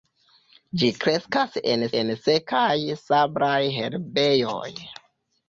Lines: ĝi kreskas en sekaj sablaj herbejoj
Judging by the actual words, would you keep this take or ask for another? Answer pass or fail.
fail